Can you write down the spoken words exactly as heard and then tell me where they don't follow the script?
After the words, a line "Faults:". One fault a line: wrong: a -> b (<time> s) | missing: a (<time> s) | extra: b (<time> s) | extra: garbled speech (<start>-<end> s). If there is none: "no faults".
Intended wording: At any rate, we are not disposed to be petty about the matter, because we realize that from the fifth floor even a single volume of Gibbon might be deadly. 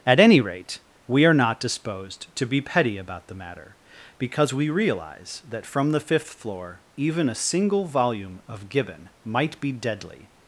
At any rate, we are not disposed to be petty about the matter, because we realize that from the fifth floor even a single volume of Gibbon might be deadly.
Faults:
no faults